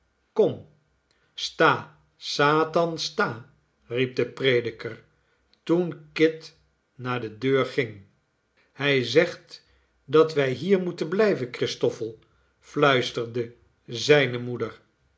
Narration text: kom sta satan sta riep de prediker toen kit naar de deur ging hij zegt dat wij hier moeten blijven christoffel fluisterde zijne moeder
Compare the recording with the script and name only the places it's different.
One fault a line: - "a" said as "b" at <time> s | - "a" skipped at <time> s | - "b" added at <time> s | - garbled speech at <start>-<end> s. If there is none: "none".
none